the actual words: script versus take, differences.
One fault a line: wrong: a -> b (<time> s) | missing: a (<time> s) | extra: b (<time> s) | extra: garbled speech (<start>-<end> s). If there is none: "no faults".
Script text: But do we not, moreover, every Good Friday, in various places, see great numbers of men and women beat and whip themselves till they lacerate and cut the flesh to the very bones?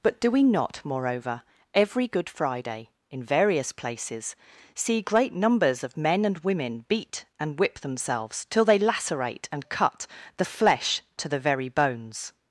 no faults